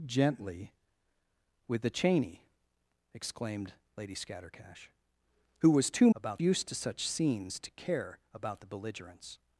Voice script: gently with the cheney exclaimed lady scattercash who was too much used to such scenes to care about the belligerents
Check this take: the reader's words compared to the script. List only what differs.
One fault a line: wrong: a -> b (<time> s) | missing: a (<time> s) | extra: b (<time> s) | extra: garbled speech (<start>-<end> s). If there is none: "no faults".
wrong: much -> about (6.1 s)